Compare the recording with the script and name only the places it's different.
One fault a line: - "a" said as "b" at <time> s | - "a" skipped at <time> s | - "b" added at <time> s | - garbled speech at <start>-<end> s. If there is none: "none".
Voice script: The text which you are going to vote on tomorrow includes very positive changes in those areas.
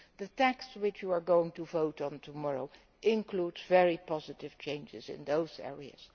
none